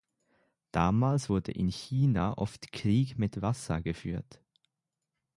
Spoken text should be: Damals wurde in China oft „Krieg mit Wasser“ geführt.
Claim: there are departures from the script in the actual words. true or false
false